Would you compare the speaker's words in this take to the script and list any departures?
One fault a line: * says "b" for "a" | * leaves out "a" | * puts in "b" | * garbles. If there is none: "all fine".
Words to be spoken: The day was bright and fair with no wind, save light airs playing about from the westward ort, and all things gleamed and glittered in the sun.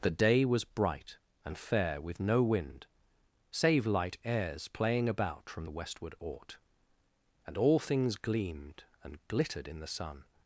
all fine